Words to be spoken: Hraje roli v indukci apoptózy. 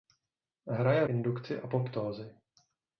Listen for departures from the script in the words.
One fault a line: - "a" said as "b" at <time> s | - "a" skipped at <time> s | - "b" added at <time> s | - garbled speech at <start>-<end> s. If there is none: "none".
- "roli" skipped at 1.1 s